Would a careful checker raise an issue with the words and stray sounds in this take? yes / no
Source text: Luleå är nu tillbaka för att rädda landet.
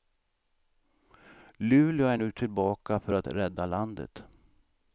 no